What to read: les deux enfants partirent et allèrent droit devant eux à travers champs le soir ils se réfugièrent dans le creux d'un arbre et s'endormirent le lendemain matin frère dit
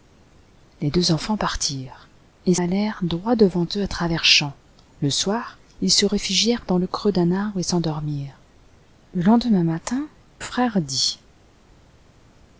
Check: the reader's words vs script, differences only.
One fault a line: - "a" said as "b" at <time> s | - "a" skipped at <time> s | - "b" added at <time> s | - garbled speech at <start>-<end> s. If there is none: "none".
none